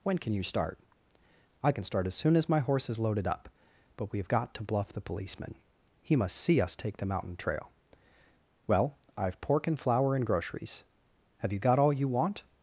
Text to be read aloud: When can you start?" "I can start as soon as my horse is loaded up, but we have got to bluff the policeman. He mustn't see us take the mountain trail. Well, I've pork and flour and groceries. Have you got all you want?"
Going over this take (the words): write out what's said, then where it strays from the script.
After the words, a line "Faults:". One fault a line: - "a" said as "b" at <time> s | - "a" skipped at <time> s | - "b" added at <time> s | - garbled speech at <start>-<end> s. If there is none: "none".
When can you start?" "I can start as soon as my horse is loaded up, but we have got to bluff the policeman. He must see us take the mountain trail. Well, I've pork and flour and groceries. Have you got all you want?"
Faults:
- "mustn't" said as "must" at 6.1 s